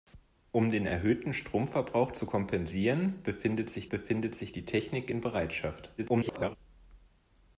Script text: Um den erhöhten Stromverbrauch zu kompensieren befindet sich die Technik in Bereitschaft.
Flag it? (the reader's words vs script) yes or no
yes